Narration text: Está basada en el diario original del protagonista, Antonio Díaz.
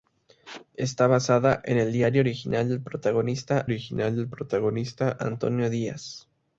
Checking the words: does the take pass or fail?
fail